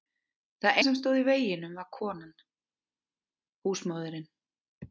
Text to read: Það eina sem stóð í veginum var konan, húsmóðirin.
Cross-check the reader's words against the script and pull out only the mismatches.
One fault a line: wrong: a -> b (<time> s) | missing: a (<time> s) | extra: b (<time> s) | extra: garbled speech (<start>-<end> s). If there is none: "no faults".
missing: eina (0.8 s)